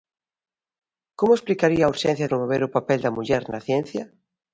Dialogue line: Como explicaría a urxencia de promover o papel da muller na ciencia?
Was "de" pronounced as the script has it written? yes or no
no